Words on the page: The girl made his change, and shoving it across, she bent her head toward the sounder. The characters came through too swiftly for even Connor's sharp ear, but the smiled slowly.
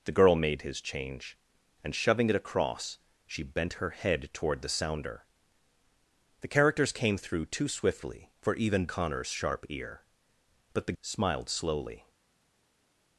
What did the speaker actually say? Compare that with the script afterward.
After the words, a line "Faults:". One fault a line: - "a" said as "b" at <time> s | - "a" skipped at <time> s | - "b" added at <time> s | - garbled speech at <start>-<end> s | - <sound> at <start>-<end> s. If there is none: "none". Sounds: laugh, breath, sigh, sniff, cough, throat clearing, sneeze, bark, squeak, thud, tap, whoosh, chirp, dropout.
The girl made his change, and shoving it across, she bent her head toward the sounder. The characters came through too swiftly for even Connor's sharp ear, but the smiled slowly.
Faults:
none